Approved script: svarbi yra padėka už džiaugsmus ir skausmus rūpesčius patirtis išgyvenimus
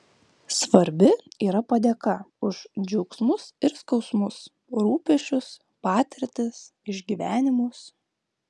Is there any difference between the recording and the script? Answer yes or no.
no